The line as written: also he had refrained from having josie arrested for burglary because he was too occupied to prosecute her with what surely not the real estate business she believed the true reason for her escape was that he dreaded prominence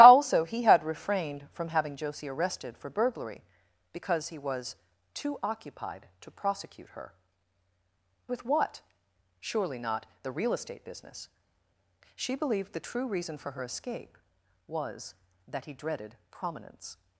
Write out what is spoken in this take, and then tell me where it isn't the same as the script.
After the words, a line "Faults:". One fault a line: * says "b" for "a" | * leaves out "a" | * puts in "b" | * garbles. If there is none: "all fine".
also he had refrained from having josie arrested for burglary because he was too occupied to prosecute her with what surely not the real estate business she believed the true reason for her escape was that he dreaded prominence
Faults:
all fine